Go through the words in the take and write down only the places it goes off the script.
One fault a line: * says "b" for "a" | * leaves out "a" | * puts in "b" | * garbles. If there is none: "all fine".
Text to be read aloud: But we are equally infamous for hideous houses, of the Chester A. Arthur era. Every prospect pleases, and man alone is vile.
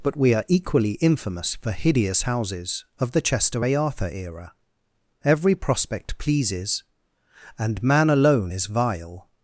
all fine